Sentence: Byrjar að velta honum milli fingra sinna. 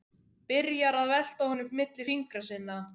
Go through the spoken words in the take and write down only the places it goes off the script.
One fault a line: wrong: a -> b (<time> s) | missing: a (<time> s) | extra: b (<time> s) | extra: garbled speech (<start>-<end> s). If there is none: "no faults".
no faults